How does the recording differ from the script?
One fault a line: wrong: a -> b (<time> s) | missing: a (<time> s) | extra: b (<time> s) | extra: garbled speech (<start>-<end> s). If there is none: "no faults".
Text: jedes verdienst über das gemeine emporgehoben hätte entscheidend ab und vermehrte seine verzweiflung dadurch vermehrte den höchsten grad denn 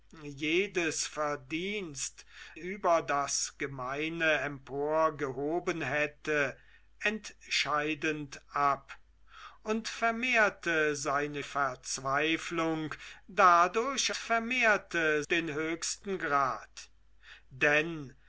no faults